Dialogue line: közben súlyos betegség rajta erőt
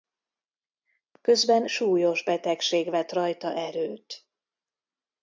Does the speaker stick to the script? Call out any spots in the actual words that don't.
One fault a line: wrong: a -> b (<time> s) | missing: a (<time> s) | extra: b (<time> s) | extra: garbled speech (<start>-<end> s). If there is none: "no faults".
extra: vett (2.9 s)